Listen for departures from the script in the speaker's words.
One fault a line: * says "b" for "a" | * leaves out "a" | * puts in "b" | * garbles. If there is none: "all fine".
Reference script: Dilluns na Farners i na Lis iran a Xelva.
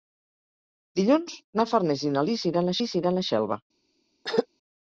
* puts in "Lis iran"